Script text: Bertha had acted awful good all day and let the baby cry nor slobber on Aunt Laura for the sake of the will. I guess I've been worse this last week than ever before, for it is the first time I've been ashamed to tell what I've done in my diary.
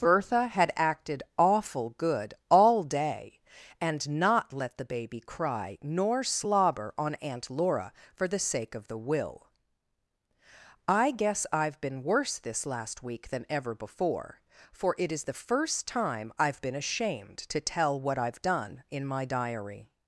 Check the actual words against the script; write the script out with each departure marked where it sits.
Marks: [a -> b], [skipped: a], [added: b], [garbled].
Bertha had acted awful good all day and [added: not] let the baby cry nor slobber on Aunt Laura for the sake of the will. I guess I've been worse this last week than ever before, for it is the first time I've been ashamed to tell what I've done in my diary.